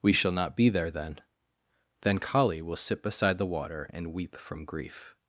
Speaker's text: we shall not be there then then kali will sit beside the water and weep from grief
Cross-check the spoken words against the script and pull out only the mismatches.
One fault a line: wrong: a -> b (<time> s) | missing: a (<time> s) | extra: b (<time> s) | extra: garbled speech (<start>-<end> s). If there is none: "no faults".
no faults